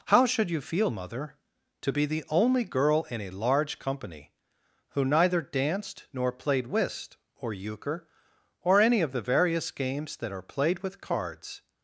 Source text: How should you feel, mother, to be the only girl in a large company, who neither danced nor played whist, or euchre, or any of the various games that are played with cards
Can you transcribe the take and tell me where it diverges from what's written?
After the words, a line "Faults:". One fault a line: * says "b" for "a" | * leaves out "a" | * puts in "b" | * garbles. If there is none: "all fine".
How should you feel, mother, to be the only girl in a large company, who neither danced nor played whist, or euchre, or any of the various games that are played with cards
Faults:
all fine